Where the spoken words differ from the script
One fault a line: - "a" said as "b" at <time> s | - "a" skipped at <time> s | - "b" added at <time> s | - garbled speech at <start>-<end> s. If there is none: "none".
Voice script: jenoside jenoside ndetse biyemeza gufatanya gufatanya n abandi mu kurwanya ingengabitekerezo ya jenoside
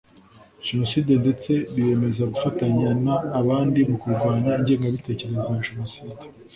- "jenoside" skipped at 1.1 s
- "gufatanya" skipped at 2.9 s